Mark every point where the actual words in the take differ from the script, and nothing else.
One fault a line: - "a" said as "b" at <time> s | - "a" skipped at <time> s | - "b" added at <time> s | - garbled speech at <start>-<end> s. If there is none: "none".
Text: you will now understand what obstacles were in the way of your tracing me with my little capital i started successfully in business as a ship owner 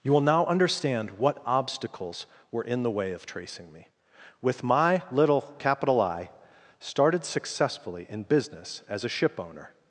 - "your" skipped at 3.2 s